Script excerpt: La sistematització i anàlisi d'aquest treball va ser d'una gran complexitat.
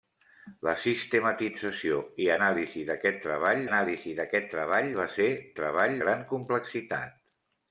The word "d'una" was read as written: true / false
false